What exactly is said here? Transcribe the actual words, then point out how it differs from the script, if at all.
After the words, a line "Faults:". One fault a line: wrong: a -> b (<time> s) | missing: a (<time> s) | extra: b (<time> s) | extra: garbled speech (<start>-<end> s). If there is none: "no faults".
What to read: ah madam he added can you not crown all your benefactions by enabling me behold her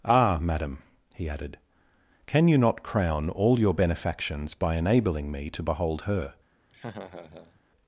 ah madam he added can you not crown all your benefactions by enabling me to behold her
Faults:
extra: to (5.5 s)